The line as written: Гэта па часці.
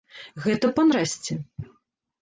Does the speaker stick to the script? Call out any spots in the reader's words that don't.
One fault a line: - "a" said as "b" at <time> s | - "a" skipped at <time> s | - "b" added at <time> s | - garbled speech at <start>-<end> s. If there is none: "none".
none